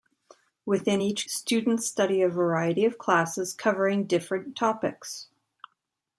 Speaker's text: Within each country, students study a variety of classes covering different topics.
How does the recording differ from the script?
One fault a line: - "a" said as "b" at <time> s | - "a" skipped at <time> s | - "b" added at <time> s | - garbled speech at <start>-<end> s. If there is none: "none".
- "country" skipped at 1.3 s